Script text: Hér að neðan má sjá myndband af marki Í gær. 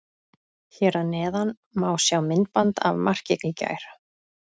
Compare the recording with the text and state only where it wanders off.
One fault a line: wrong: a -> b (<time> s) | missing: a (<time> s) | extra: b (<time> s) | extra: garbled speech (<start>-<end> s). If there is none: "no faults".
no faults